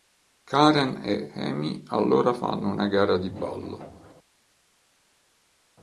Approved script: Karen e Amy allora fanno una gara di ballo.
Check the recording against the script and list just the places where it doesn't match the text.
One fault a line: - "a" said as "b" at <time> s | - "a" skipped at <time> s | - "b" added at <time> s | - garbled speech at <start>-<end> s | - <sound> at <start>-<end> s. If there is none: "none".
none